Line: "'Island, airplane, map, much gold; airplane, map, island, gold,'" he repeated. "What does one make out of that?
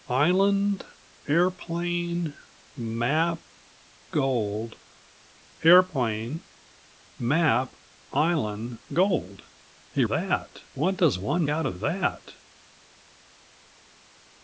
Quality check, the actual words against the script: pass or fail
fail